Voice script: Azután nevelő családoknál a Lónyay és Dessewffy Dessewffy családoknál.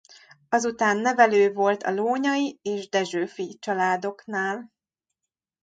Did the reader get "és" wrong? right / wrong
right